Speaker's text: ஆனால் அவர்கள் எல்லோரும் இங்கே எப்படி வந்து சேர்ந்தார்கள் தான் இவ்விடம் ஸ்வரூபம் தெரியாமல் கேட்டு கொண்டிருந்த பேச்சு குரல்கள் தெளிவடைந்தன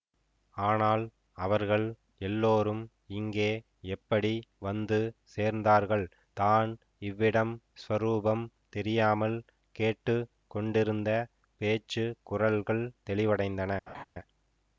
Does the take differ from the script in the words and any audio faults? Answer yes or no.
yes